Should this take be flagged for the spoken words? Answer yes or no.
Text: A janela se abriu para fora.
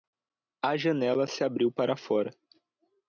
no